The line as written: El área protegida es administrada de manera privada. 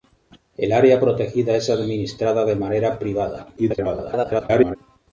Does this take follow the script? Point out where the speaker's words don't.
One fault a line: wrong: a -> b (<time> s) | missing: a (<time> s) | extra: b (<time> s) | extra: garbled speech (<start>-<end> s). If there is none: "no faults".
extra: garbled speech (3.6-4.8 s)